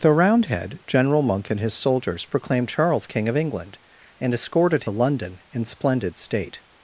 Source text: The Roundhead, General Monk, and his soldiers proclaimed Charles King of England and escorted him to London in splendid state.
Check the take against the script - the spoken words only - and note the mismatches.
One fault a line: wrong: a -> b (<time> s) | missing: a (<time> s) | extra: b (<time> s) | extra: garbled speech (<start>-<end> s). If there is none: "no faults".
missing: him to (4.8 s)